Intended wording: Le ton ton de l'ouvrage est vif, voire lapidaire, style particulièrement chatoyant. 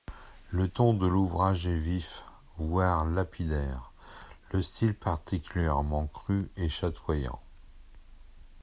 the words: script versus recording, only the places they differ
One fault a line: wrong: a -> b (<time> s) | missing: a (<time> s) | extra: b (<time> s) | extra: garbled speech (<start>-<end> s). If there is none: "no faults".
missing: ton (0.9 s)
extra: le (4.5 s)
extra: cru et (6.1 s)